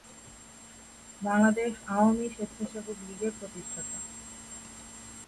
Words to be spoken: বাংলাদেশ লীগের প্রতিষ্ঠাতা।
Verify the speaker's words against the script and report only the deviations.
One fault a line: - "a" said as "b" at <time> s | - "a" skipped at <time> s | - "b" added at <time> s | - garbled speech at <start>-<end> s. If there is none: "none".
- "আওয়ামী স্বেচ্ছাসেবক" added at 1.9 s